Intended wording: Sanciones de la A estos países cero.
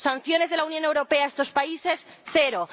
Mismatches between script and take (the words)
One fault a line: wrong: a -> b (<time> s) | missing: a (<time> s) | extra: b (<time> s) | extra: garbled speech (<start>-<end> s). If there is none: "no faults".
extra: Unión Europea (0.7 s)